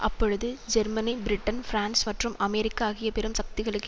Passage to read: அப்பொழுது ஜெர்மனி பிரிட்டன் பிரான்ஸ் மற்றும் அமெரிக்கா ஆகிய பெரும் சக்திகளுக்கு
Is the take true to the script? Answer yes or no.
yes